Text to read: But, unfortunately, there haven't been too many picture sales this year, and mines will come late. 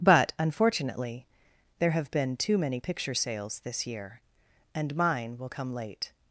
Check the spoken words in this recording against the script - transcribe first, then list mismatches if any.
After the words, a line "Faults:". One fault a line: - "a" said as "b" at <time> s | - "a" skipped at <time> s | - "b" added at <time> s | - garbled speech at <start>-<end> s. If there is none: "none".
But, unfortunately, there have been too many picture sales this year, and mine will come late.
Faults:
- "haven't" said as "have" at 1.9 s
- "mines" said as "mine" at 4.9 s